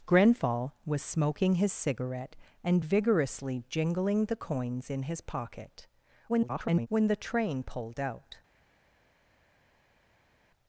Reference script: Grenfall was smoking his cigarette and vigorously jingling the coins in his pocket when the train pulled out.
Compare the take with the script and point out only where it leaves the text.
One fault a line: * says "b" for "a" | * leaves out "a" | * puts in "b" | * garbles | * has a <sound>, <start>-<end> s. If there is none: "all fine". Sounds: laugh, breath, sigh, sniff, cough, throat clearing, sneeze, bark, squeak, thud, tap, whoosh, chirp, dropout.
* garbles